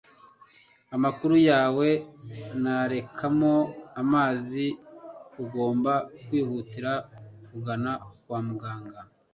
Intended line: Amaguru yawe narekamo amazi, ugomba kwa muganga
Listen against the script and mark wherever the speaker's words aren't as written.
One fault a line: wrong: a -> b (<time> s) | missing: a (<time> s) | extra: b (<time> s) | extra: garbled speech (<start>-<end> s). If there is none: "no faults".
extra: kwihutira kugana (6.2 s)